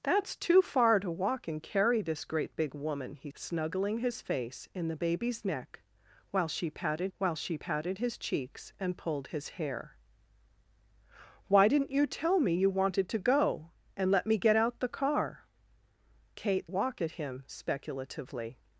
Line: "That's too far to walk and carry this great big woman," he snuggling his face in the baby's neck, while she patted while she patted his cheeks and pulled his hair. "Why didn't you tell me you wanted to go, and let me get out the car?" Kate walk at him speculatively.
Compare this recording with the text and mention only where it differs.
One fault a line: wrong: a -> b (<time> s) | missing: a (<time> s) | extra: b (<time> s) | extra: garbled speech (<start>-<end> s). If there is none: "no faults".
no faults